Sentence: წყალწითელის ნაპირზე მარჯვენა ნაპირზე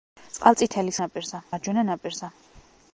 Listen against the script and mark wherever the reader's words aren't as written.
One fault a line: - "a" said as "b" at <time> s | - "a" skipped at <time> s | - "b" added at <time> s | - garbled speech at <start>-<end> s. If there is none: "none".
none